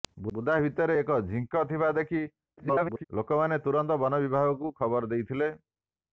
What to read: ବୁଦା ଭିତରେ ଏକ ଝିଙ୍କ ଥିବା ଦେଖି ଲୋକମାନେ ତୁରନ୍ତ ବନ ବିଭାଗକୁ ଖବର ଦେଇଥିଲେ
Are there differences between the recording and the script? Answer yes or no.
yes